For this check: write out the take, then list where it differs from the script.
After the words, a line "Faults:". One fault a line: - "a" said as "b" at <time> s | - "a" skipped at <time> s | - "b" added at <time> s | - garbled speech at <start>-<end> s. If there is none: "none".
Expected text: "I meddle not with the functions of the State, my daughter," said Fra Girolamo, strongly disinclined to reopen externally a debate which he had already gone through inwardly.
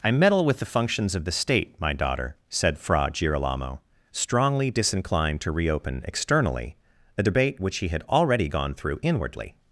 "I meddle with the functions of the State, my daughter," said Fra Girolamo, strongly disinclined to reopen externally a debate which he had already gone through inwardly.
Faults:
- "not" skipped at 0.5 s